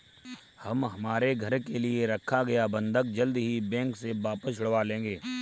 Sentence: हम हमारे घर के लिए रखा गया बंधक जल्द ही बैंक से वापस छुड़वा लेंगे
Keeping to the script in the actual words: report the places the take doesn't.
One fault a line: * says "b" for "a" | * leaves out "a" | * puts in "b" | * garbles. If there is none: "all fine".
all fine